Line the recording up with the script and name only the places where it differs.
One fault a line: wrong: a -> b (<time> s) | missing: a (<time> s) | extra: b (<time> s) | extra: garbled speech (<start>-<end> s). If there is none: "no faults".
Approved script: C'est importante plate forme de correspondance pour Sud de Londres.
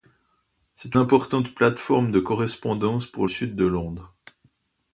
no faults